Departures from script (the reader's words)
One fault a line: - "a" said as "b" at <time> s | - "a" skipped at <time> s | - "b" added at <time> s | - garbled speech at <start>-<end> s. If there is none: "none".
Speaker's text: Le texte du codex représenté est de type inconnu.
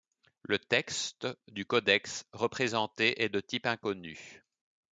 none